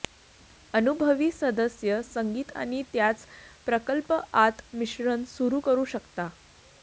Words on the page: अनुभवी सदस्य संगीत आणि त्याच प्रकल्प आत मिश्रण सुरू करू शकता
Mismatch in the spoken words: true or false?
false